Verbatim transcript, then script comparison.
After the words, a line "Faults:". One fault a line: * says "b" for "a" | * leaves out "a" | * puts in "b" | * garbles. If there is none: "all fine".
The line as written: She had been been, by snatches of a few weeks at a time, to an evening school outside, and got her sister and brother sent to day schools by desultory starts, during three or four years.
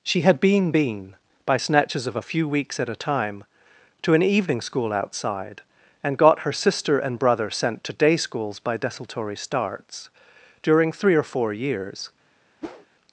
She had been been, by snatches of a few weeks at a time, to an evening school outside, and got her sister and brother sent to day schools by desultory starts, during three or four years.
Faults:
all fine